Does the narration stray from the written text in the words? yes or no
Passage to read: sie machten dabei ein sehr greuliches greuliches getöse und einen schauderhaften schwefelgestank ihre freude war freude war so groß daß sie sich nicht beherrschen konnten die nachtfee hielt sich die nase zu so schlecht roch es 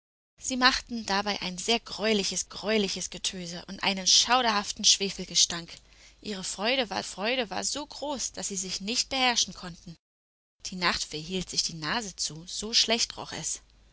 no